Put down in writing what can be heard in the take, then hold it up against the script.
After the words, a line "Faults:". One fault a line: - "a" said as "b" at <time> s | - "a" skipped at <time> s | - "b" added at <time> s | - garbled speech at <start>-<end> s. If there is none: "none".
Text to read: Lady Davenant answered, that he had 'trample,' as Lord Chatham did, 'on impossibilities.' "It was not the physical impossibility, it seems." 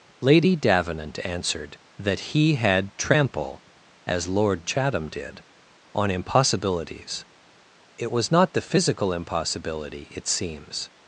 Lady Davenant answered, that he had 'trample,' as Lord Chatham did, 'on impossibilities.' "It was not the physical impossibility, it seems."
Faults:
none